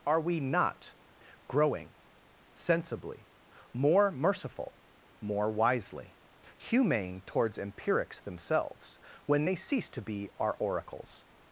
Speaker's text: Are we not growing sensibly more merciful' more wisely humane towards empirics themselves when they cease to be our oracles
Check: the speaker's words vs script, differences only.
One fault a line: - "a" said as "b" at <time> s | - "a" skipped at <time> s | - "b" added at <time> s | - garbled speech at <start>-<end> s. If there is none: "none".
none